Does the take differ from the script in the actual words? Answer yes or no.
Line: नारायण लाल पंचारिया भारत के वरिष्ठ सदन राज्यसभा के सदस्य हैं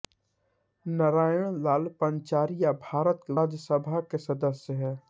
yes